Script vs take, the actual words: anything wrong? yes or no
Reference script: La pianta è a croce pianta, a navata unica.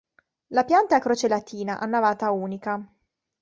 yes